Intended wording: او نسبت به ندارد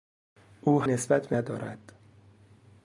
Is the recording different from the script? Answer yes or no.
no